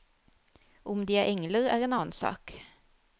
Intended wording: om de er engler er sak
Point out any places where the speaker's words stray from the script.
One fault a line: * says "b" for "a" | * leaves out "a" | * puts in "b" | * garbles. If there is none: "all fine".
* puts in "en annen"